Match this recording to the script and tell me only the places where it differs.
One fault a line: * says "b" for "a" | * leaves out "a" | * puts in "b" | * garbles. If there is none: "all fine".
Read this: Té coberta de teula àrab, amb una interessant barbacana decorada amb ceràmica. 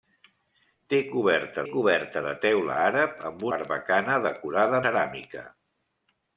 * puts in "coberta"
* leaves out "una interessant"
* leaves out "amb"